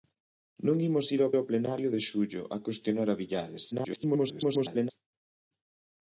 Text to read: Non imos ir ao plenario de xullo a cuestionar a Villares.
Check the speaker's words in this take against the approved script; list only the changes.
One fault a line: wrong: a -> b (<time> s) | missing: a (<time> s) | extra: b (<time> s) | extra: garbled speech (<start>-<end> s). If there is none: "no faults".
extra: ao (1.4 s)
extra: garbled speech (3.7-4.9 s)